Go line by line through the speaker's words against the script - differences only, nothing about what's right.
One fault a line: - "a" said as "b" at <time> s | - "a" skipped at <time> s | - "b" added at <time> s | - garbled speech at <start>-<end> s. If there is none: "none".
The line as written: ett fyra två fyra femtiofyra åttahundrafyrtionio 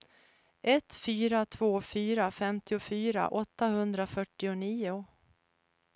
none